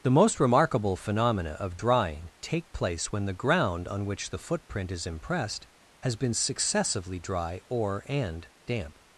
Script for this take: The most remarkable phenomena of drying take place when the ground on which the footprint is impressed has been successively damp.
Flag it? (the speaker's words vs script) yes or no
yes